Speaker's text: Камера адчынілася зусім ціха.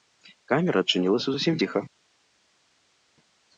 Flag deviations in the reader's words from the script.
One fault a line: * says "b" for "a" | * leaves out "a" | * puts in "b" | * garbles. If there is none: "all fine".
all fine